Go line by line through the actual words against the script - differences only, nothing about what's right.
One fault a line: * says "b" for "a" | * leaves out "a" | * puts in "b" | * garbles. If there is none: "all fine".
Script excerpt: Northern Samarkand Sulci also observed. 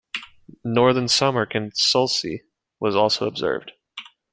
* puts in "was"